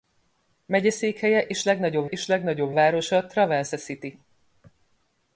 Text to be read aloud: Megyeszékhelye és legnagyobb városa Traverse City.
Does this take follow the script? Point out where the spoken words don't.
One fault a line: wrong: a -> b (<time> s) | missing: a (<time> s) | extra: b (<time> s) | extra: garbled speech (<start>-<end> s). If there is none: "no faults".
extra: és legnagyobb (2.1 s)